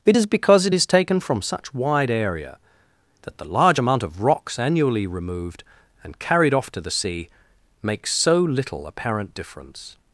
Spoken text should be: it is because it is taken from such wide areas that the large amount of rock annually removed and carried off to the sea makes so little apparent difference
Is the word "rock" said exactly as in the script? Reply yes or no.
no